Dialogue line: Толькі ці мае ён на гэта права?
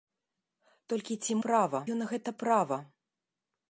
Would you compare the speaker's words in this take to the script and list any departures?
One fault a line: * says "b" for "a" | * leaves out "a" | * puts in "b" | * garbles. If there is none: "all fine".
* says "права" for "мае"